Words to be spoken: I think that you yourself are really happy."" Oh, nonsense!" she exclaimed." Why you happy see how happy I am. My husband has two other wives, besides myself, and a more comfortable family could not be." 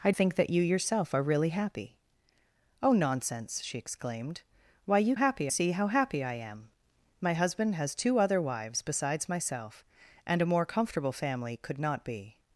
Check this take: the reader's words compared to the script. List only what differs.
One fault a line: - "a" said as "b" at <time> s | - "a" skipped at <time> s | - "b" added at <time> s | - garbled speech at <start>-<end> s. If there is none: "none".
none